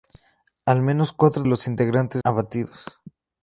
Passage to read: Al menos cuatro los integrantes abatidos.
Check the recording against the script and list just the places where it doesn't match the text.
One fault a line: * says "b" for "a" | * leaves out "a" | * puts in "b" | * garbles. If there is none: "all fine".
all fine